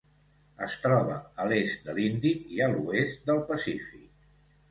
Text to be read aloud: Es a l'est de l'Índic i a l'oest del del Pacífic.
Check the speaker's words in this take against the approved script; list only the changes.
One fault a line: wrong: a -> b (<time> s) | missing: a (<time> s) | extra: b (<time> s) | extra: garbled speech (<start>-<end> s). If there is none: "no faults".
extra: troba (0.8 s)
missing: del (3.4 s)